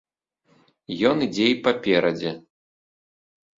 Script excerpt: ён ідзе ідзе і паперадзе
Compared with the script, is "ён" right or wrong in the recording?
right